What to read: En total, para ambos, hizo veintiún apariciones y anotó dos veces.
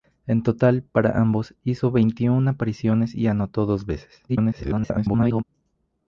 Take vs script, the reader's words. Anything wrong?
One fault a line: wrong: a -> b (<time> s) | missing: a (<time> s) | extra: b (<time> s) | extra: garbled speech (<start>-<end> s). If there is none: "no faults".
extra: garbled speech (4.3-5.4 s)